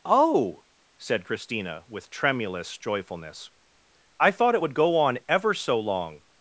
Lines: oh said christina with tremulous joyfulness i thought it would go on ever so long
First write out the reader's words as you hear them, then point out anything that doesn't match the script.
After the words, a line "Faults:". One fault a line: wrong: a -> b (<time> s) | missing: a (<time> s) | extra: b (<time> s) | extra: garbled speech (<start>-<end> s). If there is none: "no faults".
oh said christina with tremulous joyfulness i thought it would go on ever so long
Faults:
no faults